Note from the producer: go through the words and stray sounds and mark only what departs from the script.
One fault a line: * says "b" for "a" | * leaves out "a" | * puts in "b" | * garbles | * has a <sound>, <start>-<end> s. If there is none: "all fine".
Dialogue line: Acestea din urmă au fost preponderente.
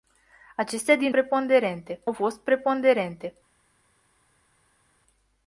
* says "preponderente" for "urmă"